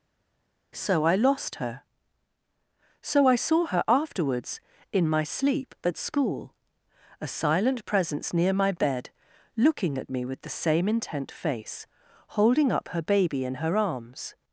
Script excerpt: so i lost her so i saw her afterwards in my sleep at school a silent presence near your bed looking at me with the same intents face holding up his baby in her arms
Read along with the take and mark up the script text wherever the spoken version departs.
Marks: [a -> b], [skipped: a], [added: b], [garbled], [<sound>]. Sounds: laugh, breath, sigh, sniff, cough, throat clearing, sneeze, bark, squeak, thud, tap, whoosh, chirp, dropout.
so i lost her so i saw her afterwards in my sleep at school a silent presence near [your -> my] bed looking at me with the same [intents -> intent] face holding up [his -> her] baby in her arms